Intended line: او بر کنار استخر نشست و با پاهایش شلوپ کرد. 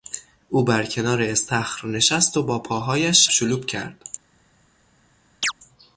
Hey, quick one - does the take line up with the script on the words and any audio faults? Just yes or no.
no